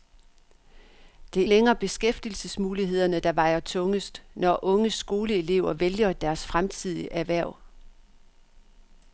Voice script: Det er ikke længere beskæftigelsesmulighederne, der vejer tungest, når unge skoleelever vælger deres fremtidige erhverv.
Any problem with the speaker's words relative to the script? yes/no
yes